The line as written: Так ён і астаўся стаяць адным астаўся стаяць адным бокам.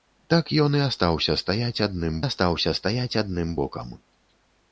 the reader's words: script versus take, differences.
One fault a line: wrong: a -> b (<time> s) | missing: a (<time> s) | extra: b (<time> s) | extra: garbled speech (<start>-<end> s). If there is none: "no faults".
no faults